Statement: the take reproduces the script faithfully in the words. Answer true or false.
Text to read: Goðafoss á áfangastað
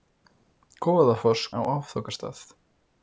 true